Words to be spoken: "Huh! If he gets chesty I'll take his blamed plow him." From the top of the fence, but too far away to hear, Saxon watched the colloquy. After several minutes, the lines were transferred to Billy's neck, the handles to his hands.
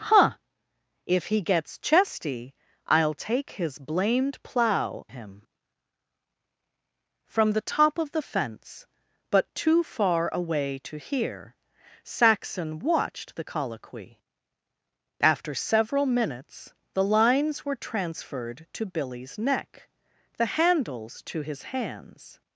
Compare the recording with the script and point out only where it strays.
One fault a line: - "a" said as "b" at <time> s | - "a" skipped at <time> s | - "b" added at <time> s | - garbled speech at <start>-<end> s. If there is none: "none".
none